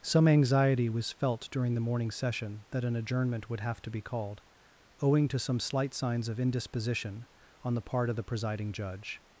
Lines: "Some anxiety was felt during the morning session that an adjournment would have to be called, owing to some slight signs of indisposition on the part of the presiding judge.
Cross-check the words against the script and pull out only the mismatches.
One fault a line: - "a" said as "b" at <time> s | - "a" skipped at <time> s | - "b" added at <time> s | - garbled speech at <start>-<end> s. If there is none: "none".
none